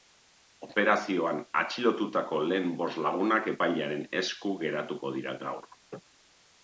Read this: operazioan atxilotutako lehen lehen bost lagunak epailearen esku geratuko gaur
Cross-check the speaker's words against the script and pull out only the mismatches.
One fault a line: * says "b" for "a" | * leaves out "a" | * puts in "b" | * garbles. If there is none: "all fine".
* leaves out "lehen"
* puts in "dira"